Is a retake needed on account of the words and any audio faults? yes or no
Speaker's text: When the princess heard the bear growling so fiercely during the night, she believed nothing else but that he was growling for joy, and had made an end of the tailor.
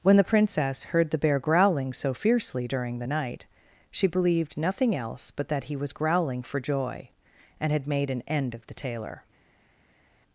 no